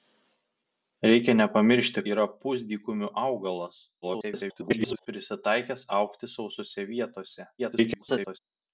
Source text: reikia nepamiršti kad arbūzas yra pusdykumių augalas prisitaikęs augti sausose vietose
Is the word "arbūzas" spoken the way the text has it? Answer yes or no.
no